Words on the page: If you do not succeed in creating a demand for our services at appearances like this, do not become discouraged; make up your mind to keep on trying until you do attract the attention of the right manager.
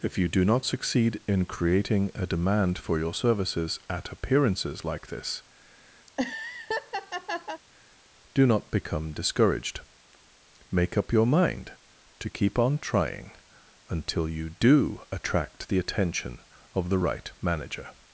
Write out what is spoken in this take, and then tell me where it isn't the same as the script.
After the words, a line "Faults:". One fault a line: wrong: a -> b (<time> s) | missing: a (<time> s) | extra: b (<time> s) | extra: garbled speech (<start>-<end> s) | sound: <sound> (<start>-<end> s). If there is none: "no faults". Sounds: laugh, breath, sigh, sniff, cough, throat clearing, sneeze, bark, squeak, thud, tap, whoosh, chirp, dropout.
If you do not succeed in creating a demand for your services at appearances like this, do not become discouraged; make up your mind to keep on trying until you do attract the attention of the right manager.
Faults:
wrong: our -> your (3.0 s)
sound: laugh (6.1-7.6 s)